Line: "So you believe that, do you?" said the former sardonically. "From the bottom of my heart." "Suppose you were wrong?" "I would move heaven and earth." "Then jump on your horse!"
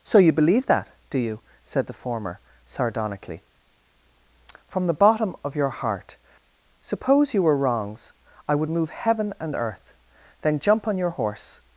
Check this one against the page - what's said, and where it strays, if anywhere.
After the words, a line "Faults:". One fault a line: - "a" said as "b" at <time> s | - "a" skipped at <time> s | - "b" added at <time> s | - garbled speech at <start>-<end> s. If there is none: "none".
"So you believe that, do you?" said the former sardonically. "From the bottom of your heart." "Suppose you were wrongs?" "I would move heaven and earth." "Then jump on your horse!"
Faults:
- "my" said as "your" at 5.5 s
- "wrong" said as "wrongs" at 7.6 s